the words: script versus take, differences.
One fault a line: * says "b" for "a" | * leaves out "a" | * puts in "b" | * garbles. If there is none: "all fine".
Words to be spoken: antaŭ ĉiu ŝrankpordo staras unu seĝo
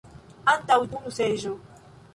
* leaves out "ĉiu ŝrankpordo staras"